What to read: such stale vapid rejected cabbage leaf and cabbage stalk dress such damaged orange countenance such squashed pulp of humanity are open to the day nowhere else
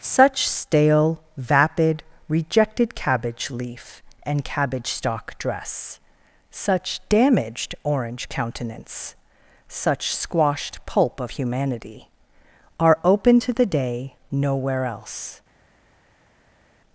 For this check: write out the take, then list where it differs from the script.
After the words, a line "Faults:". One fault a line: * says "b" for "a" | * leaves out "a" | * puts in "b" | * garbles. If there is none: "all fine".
such stale vapid rejected cabbage leaf and cabbage stalk dress such damaged orange countenance such squashed pulp of humanity are open to the day nowhere else
Faults:
all fine